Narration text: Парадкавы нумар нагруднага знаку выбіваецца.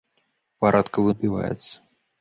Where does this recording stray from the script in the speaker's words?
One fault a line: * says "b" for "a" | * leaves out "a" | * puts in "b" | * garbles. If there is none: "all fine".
* leaves out "нумар нагруднага знаку"